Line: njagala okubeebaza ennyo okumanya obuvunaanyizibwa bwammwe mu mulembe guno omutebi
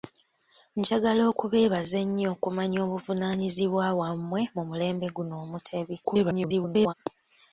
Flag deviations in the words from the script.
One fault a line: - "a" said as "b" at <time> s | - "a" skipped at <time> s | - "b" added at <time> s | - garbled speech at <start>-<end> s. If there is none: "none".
- garbled speech at 6.0-6.9 s